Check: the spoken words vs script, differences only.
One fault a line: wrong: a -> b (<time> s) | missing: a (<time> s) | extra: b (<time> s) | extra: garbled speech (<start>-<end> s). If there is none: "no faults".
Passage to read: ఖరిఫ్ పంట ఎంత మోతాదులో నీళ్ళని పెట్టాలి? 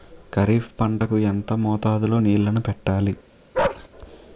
extra: కు (1.0 s)